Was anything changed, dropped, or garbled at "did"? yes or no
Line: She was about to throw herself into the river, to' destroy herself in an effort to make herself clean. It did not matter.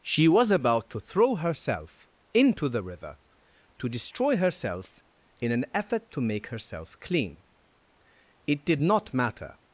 no